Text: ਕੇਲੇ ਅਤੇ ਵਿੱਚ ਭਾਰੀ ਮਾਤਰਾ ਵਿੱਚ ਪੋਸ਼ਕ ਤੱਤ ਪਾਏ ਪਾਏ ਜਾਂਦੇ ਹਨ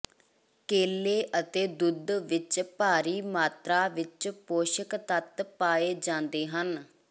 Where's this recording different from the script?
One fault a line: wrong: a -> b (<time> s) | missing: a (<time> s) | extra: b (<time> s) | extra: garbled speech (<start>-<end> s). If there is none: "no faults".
extra: ਦੁੱਧ (1.8 s)
missing: ਪਾਏ (5.9 s)